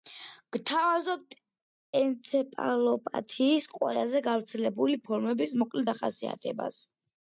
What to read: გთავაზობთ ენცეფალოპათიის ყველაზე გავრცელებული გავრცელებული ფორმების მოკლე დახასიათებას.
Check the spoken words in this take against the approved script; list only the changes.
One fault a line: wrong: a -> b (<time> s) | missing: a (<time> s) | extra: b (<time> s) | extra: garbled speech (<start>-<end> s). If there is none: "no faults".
missing: გავრცელებული (5.0 s)